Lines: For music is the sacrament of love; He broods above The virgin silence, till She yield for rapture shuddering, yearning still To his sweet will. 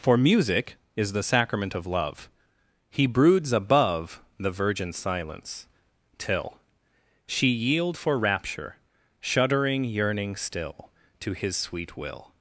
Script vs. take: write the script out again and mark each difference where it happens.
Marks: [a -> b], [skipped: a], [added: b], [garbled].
For music is the sacrament of love; He broods above The virgin silence, till She yield for rapture shuddering, yearning still To his sweet will.